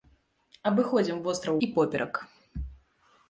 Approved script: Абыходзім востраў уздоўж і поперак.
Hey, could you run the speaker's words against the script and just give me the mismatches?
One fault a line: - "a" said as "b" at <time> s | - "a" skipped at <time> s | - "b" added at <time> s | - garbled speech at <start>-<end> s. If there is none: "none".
- "уздоўж" skipped at 1.6 s